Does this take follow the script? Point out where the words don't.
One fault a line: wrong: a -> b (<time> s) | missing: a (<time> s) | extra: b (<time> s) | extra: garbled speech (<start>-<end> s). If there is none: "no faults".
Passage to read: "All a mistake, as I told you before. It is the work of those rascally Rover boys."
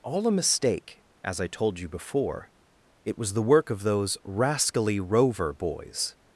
wrong: is -> was (3.2 s)